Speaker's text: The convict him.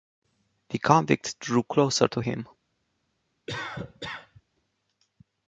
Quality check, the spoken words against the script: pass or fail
fail